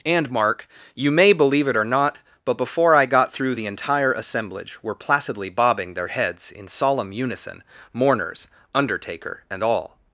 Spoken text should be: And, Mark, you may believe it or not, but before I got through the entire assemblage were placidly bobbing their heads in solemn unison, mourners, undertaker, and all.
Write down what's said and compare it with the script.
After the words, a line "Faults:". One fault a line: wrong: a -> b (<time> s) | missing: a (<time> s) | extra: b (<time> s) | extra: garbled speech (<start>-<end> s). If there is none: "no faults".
And, Mark, you may believe it or not, but before I got through the entire assemblage were placidly bobbing their heads in solemn unison, mourners, undertaker, and all.
Faults:
no faults